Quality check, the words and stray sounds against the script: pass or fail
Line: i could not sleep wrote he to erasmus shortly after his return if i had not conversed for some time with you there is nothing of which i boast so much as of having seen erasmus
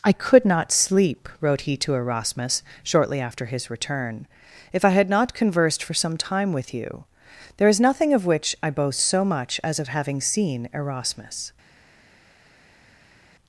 pass